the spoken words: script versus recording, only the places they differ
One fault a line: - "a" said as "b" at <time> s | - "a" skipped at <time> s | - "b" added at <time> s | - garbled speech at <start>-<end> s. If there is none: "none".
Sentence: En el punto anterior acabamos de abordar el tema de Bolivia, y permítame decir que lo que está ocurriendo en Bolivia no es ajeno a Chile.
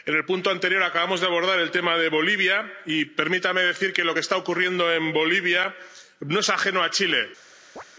none